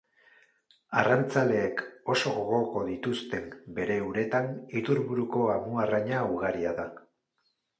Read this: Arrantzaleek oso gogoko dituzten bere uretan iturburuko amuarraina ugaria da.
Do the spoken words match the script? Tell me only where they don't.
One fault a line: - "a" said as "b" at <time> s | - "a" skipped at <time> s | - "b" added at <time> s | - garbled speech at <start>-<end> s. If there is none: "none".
none